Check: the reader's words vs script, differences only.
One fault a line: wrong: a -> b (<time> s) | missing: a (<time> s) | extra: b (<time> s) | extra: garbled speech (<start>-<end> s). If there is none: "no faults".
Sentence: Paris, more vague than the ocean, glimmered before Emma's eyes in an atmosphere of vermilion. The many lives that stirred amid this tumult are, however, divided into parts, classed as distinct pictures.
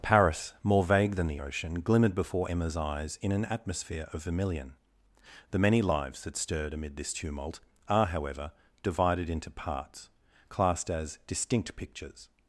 no faults